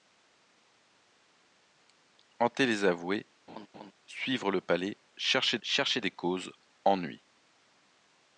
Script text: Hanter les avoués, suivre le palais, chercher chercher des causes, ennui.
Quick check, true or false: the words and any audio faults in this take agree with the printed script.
false